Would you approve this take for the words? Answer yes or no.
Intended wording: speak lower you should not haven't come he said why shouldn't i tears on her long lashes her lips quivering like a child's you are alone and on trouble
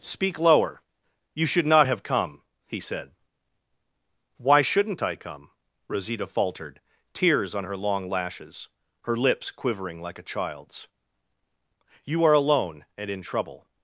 no